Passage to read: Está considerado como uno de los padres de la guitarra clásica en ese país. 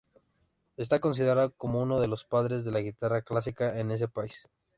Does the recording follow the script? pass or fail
pass